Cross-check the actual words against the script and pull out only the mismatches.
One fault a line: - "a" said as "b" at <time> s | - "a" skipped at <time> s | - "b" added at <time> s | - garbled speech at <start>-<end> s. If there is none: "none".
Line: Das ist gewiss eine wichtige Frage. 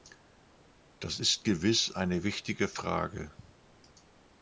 none